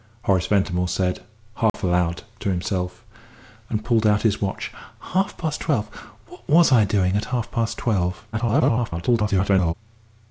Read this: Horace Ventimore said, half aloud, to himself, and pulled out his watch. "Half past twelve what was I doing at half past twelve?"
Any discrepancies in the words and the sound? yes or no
yes